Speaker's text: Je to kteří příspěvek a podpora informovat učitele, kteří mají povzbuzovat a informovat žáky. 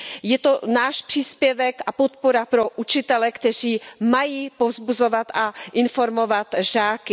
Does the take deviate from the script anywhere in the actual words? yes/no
yes